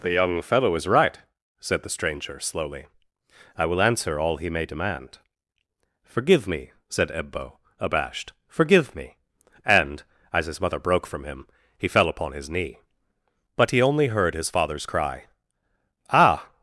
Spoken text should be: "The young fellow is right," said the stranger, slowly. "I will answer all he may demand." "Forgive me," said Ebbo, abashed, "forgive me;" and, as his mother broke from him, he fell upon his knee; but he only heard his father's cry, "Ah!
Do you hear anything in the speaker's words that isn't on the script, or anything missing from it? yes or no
no